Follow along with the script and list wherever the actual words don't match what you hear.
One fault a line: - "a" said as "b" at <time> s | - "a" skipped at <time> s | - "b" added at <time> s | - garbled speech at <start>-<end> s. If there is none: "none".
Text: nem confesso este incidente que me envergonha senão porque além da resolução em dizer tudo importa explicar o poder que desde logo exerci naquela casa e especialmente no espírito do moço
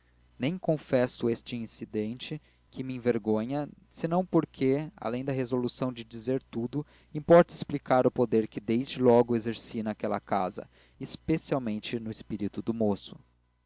- "em" said as "de" at 5.9 s